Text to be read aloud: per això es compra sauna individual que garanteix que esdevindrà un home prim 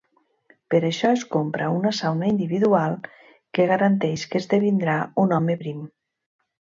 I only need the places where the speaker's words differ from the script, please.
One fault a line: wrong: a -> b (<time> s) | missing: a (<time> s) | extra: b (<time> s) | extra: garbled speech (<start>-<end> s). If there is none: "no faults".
extra: una (1.8 s)